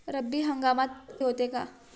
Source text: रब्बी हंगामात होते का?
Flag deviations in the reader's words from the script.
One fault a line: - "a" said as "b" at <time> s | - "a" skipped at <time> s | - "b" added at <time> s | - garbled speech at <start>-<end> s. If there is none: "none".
none